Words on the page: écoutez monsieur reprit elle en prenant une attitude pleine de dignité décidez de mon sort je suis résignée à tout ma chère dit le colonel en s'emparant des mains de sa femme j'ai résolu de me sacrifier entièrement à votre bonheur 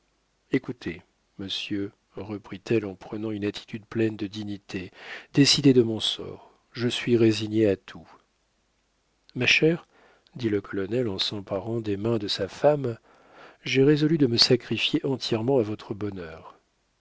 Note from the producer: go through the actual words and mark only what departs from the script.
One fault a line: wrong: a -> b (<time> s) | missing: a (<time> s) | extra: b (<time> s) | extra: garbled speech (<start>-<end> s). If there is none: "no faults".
no faults